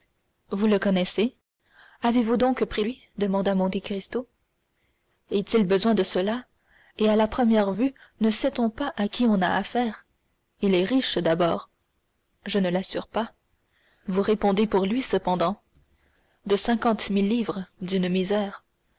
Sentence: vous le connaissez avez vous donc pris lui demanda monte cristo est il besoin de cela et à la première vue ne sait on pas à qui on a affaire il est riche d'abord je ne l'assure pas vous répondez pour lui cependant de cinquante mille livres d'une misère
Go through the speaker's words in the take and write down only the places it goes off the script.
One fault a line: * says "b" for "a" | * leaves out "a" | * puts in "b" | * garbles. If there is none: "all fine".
all fine